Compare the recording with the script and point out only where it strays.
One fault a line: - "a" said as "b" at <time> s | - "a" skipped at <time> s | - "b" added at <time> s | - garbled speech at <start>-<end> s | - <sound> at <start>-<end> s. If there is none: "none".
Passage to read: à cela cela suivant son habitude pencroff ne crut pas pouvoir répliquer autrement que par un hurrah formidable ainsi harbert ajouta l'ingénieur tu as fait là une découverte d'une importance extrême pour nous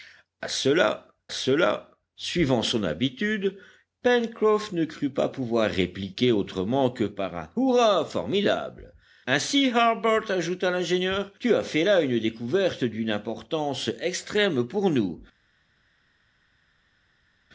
none